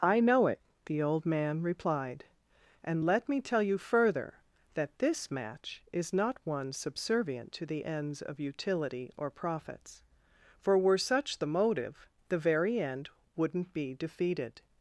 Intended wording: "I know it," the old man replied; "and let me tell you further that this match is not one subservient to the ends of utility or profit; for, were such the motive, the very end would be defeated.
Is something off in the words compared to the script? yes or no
yes